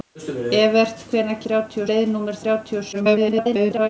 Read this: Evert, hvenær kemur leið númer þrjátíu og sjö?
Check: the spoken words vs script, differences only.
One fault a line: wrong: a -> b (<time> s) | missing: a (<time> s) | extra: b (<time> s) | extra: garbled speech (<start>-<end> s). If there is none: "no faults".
wrong: kemur -> þrjátíu (1.5 s)
extra: garbled speech (2.9-3.9 s)